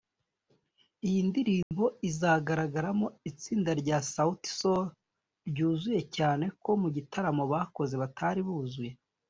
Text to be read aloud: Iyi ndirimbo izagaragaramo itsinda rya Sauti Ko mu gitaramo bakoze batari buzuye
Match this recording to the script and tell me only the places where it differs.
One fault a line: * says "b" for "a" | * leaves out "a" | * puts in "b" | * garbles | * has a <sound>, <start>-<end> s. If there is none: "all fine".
* has a dropout, 1.6-1.7 s
* puts in "Sol ryuzuye cyane"